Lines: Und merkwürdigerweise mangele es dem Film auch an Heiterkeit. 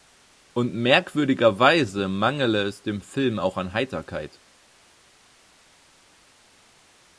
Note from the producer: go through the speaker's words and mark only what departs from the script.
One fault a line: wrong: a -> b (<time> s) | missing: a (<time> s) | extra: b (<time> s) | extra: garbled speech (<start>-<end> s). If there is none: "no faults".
no faults